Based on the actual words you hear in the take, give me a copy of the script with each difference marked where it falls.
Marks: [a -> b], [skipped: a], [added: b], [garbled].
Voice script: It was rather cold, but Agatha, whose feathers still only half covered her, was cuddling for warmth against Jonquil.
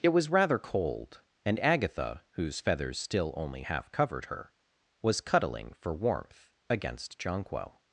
It was rather cold, [but -> and] Agatha, whose feathers still only half covered her, was cuddling for warmth against Jonquil.